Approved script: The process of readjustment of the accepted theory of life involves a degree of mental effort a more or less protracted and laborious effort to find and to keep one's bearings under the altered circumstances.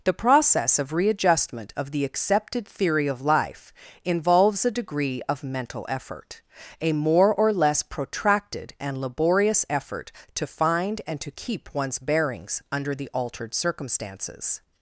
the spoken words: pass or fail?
pass